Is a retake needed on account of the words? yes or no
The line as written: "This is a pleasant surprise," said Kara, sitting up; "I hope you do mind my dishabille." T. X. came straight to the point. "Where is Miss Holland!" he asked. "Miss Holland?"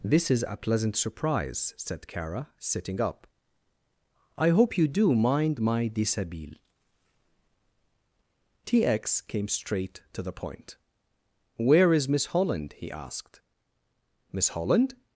no